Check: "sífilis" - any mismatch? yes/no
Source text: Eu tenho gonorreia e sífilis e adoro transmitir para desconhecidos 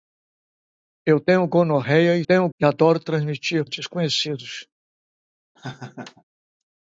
yes